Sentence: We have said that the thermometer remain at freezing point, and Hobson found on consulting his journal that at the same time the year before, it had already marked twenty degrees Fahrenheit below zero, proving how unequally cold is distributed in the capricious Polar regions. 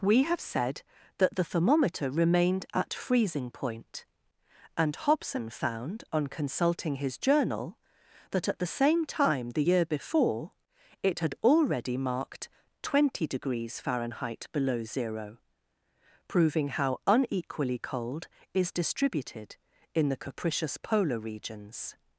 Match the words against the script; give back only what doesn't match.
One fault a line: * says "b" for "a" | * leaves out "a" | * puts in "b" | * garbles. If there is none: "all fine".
* says "remained" for "remain"